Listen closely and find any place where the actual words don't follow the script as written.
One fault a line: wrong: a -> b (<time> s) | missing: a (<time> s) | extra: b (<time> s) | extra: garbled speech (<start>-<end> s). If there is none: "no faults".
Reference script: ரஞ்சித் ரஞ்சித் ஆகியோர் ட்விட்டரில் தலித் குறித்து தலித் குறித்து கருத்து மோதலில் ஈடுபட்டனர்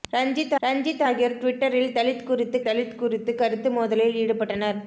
no faults